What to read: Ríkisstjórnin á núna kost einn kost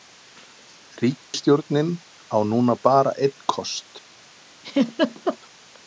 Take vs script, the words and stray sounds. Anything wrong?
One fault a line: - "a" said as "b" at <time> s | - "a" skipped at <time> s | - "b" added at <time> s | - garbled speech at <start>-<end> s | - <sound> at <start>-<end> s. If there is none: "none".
- dropout at 1.2-1.3 s
- "kost" said as "bara" at 2.9 s
- laugh at 4.6-5.4 s